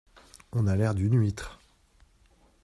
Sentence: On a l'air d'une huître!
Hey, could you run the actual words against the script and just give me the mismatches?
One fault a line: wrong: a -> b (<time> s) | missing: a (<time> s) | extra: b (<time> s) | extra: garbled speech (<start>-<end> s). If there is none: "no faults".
no faults